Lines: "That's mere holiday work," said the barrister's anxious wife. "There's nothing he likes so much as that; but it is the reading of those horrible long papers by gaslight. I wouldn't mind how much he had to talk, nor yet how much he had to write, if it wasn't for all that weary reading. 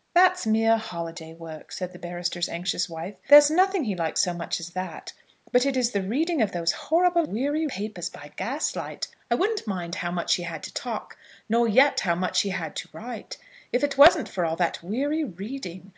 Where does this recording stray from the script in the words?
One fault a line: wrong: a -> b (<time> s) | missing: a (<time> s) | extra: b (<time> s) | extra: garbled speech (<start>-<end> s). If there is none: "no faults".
wrong: long -> weary (7.3 s)